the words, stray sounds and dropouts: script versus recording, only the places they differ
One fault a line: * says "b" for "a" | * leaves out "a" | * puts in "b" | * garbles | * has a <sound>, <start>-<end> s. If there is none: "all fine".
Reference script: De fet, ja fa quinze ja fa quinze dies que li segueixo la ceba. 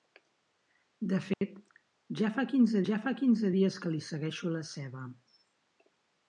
* has a dropout, 1.3-1.4 s